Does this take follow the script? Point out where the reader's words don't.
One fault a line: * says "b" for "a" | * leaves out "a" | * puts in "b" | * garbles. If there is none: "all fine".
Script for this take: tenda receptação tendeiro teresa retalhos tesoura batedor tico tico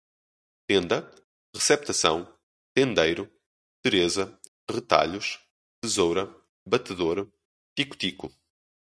all fine